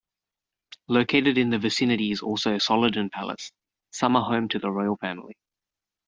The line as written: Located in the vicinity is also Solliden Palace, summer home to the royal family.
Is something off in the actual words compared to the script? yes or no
no